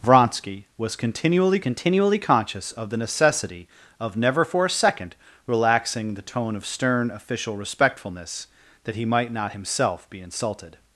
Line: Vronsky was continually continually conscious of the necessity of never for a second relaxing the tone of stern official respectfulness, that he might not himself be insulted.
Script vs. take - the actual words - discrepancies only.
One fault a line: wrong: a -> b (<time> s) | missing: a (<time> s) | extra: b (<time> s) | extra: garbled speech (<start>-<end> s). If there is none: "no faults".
no faults